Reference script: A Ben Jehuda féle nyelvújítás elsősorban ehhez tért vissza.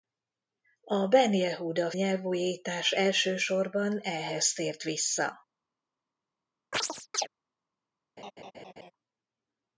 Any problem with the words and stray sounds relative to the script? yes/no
yes